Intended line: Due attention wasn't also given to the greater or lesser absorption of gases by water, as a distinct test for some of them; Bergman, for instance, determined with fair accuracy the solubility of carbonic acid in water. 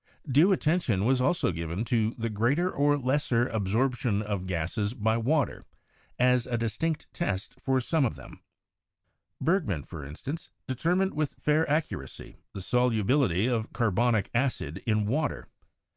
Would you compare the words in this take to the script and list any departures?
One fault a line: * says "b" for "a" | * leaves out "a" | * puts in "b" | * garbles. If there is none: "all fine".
* says "was" for "wasn't"